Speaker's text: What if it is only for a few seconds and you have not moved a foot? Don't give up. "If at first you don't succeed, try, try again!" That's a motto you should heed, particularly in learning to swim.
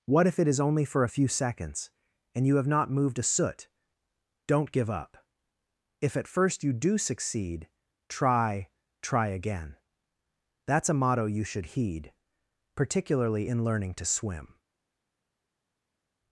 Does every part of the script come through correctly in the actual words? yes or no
no